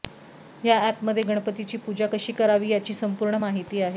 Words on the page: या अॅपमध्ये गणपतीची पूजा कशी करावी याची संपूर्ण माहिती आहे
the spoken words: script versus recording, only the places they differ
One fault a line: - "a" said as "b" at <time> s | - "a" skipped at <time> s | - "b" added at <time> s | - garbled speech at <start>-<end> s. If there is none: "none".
none